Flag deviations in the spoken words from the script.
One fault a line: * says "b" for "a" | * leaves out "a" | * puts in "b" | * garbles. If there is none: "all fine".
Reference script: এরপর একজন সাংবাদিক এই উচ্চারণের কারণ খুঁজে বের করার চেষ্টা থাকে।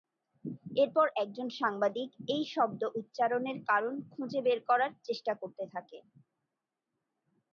* puts in "শব্দ"
* puts in "করতে"